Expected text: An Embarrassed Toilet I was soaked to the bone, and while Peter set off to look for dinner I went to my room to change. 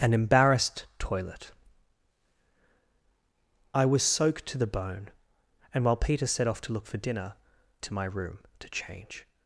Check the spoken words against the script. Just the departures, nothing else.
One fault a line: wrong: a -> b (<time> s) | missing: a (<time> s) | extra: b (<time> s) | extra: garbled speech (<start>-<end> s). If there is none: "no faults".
missing: I went (7.3 s)